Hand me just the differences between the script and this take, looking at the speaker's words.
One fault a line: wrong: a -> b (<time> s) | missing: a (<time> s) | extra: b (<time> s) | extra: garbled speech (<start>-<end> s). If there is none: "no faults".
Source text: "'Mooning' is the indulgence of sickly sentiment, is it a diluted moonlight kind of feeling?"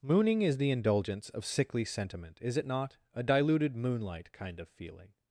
extra: not (2.6 s)